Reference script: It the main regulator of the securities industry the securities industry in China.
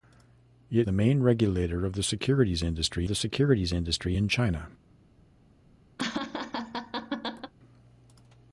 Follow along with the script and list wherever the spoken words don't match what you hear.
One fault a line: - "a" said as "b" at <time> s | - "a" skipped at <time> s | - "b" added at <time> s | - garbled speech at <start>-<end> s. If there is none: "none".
none